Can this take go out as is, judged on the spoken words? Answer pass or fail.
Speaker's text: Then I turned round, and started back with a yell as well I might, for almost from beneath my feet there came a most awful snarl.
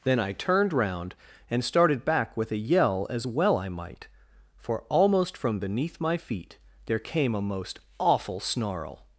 pass